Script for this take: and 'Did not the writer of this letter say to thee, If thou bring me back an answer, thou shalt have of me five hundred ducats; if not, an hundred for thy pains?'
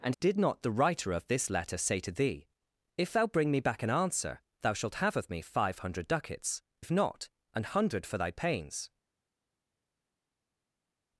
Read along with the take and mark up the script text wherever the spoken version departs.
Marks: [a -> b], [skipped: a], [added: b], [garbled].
and 'Did not the writer of this letter say to thee, If thou bring me back an answer, thou shalt have of me five hundred ducats; if not, an hundred for thy pains?'